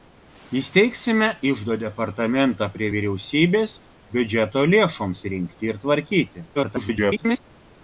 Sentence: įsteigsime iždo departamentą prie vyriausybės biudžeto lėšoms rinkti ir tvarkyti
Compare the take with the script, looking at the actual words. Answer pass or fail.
fail